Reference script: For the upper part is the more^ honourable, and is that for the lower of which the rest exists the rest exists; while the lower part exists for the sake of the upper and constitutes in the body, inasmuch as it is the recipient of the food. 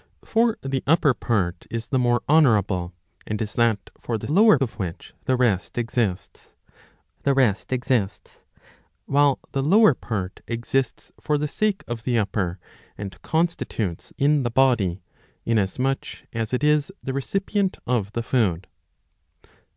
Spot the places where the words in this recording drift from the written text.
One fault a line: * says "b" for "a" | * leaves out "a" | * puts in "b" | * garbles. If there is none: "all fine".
all fine